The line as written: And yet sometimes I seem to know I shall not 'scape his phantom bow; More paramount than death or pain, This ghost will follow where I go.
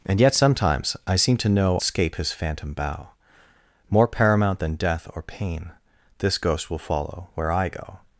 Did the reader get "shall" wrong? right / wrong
wrong